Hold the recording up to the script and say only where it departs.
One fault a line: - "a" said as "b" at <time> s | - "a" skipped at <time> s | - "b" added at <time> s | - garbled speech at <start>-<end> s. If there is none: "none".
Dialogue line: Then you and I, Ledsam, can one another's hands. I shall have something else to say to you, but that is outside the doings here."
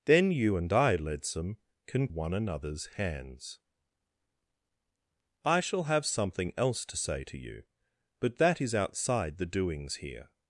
none